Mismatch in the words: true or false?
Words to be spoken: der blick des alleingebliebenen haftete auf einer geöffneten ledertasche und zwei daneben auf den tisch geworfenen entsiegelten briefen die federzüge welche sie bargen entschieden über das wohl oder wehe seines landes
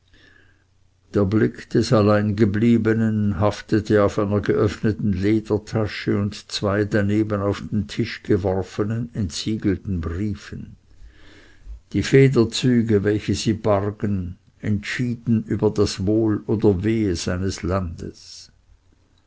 false